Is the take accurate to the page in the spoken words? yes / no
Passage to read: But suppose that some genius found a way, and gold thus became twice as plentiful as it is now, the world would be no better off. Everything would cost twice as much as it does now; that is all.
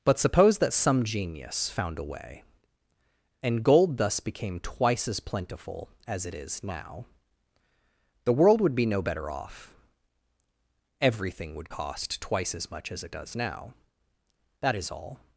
yes